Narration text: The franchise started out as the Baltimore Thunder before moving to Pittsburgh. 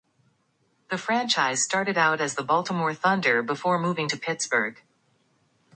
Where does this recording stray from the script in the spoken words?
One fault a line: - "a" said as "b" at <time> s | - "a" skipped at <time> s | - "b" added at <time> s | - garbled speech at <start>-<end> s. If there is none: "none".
none